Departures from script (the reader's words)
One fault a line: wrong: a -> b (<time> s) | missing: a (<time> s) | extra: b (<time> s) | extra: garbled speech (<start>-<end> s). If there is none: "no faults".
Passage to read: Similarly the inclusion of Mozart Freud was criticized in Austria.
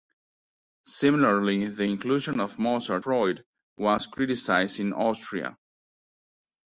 no faults